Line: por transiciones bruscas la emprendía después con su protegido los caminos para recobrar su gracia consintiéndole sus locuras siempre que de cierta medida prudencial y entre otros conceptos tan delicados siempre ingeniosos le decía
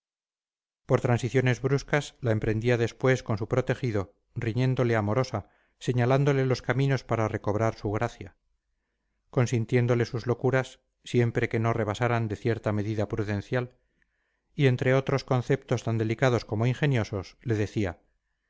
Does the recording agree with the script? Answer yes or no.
no